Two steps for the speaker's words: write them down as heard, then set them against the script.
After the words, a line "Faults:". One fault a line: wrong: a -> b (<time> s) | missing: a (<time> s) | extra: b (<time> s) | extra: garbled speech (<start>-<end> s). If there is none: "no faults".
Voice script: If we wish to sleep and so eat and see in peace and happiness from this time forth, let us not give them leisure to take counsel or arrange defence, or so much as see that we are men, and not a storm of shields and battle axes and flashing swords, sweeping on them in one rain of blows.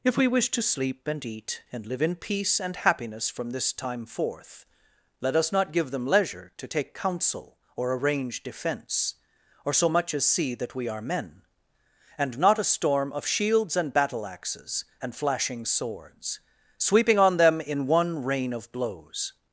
If we wish to sleep and eat and live in peace and happiness from this time forth, let us not give them leisure to take counsel or arrange defence, or so much as see that we are men, and not a storm of shields and battle axes and flashing swords, sweeping on them in one rain of blows.
Faults:
missing: so (1.2 s)
wrong: see -> live (1.9 s)